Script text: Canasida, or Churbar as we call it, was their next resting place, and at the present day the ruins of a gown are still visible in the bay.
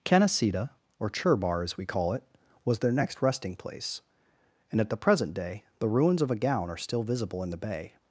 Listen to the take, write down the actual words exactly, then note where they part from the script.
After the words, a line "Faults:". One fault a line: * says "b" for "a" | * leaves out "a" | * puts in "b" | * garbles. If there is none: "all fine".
Canasida, or Churbar as we call it, was their next resting place, and at the present day the ruins of a gown are still visible in the bay.
Faults:
all fine